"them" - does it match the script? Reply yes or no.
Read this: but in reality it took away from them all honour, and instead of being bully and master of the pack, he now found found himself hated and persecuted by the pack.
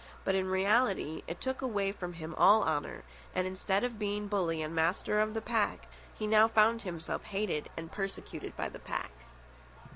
no